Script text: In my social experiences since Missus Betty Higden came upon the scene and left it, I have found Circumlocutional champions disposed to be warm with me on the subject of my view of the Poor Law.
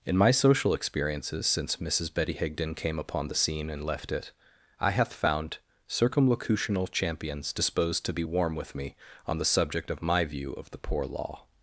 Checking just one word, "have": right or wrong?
wrong